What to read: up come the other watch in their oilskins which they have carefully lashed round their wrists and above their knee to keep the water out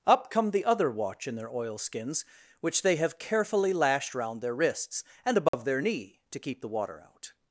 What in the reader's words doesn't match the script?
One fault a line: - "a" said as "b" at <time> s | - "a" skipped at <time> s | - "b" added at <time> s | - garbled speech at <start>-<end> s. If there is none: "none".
none